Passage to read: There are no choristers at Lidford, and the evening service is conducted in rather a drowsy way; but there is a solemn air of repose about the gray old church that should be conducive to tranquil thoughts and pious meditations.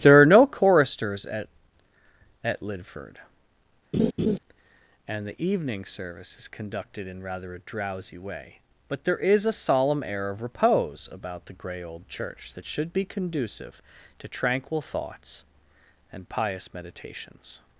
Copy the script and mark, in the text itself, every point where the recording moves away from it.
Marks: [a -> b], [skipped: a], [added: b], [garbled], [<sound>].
There are no choristers at [added: at] Lidford, [laugh] and the evening service is conducted in rather a drowsy way; but there is a solemn air of repose about the gray old church that should be conducive to tranquil thoughts and pious meditations.